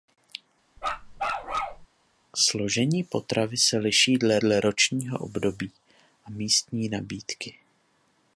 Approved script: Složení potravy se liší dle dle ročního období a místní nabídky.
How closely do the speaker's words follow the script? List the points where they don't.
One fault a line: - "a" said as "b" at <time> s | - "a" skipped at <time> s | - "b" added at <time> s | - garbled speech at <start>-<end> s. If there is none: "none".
none